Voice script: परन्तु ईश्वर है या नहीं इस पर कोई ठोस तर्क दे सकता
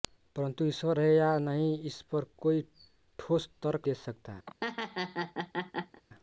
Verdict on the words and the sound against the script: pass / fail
fail